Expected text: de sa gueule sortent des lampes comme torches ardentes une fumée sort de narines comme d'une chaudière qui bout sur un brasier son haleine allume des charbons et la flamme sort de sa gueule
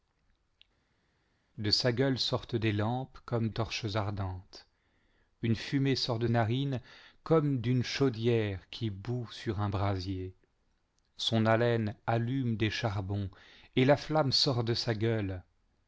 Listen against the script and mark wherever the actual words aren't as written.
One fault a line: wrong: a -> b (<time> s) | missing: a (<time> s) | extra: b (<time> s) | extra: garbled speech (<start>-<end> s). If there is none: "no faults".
no faults